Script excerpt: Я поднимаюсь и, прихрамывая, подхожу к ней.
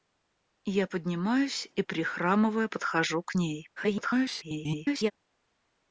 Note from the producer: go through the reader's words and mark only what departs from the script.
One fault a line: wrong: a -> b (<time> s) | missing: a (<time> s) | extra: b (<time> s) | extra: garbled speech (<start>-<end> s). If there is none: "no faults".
extra: garbled speech (3.8-5.1 s)